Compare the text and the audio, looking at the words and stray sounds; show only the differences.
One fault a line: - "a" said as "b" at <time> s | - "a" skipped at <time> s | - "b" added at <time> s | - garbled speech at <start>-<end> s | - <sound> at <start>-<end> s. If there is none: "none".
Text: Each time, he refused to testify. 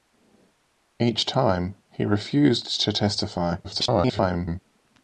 - garbled speech at 3.6-4.6 s